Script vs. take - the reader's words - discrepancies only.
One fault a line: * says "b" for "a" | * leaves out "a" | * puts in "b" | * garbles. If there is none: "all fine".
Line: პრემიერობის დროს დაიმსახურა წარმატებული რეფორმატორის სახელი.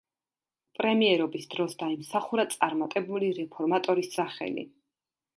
all fine